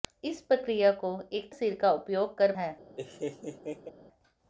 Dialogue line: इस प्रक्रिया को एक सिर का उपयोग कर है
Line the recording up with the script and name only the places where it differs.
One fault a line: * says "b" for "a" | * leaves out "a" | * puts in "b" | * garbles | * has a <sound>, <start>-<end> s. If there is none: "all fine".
* has a laugh, 3.0-3.9 s